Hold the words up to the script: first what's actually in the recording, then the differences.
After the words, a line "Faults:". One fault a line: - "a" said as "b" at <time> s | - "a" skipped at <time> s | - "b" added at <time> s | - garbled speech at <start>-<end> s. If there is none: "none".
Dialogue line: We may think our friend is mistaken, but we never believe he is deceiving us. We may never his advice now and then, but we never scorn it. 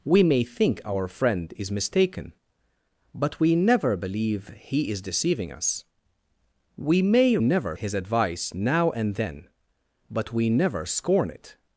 We may think our friend is mistaken, but we never believe he is deceiving us. We may never his advice now and then, but we never scorn it.
Faults:
none